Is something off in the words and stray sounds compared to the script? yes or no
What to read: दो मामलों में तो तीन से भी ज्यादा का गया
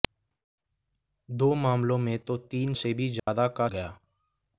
yes